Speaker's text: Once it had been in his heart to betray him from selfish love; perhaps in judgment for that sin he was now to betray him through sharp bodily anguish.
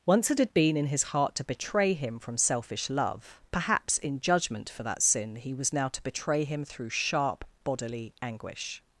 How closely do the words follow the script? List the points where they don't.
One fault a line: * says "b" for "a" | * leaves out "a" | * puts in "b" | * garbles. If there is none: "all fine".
all fine